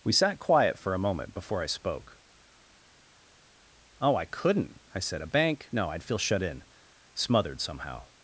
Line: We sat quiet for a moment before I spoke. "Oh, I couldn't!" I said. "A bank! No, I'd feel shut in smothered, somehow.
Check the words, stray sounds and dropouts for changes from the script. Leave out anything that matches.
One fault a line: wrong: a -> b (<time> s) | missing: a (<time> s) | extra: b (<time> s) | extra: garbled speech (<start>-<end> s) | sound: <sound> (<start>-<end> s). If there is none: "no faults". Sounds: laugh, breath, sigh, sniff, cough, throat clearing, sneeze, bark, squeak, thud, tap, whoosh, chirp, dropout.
no faults